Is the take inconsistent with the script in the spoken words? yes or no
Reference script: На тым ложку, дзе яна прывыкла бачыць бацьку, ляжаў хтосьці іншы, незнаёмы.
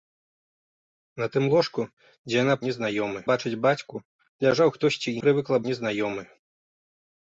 yes